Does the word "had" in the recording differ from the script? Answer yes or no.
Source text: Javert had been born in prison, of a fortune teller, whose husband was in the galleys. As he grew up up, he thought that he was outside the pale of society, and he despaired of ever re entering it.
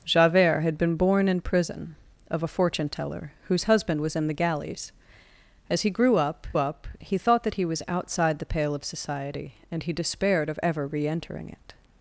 no